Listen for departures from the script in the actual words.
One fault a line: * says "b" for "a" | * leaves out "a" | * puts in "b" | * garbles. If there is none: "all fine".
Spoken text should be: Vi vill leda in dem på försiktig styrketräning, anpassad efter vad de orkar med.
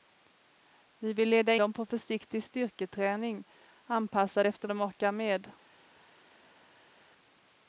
* leaves out "in"
* leaves out "vad"